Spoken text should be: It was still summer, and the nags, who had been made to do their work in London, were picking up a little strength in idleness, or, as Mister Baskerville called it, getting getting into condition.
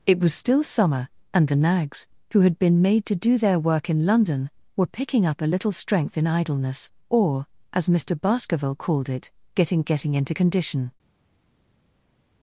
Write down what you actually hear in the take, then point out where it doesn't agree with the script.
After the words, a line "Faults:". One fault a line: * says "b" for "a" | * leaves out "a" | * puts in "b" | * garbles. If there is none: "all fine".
It was still summer, and the nags, who had been made to do their work in London, were picking up a little strength in idleness, or, as Mister Baskerville called it, getting getting into condition.
Faults:
all fine